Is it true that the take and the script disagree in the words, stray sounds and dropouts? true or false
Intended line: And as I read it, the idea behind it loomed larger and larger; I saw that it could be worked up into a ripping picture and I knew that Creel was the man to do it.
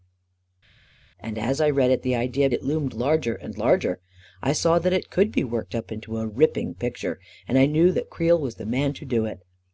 true